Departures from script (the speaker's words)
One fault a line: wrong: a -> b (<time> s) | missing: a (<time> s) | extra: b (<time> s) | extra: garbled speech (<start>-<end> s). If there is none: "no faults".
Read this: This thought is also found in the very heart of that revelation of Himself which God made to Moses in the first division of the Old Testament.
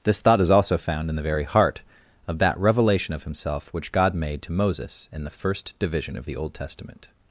no faults